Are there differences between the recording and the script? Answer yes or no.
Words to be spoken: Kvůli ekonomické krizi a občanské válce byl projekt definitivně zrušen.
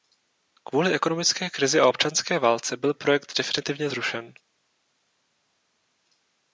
no